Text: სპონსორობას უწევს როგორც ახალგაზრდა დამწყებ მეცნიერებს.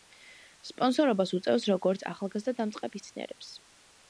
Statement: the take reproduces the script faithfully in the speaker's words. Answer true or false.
true